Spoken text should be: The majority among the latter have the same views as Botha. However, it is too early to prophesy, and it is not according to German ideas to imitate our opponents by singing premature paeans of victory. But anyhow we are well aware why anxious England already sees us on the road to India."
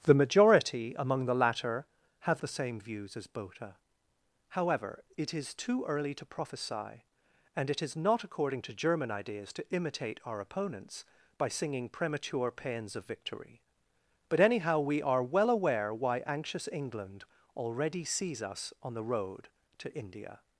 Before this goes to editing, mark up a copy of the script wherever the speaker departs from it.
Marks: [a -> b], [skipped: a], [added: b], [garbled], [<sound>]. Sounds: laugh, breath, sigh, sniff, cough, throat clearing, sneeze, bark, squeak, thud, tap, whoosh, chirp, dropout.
The majority among the latter have the same views as Botha. However, it is too early to prophesy, and it is not according to German ideas to imitate our opponents by singing premature paeans of victory. But anyhow we are well aware why anxious England already sees us on the road to India."